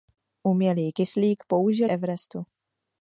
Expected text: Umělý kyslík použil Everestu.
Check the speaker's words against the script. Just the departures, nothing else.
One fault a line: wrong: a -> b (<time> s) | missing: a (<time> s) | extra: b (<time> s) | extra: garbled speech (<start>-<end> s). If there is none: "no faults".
no faults